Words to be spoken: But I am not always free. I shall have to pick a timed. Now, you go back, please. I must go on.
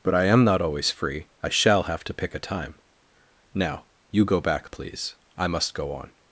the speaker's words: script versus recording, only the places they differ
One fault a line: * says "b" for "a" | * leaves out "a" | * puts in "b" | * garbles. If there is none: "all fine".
* says "time" for "timed"